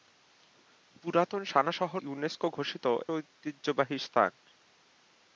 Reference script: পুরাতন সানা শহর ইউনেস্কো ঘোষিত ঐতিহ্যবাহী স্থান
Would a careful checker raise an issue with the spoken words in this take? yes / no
no